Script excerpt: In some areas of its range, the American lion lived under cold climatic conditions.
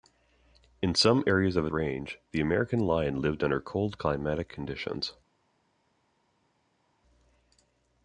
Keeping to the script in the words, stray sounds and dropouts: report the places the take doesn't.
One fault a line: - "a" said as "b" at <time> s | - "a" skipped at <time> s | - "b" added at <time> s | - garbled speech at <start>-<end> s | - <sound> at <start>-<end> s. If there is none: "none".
- "its" skipped at 1.7 s